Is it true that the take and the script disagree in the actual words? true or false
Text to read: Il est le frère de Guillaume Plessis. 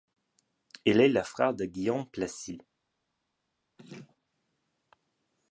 false